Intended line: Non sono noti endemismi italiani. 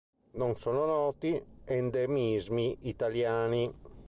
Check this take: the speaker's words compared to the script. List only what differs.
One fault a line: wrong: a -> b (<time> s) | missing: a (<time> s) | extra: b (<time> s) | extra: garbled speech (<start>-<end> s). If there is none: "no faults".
no faults